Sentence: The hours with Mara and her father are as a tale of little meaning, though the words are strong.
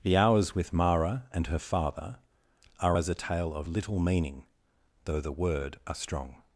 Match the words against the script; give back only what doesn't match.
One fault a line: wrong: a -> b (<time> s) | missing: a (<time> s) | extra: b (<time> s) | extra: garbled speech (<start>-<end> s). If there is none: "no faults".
wrong: words -> word (5.3 s)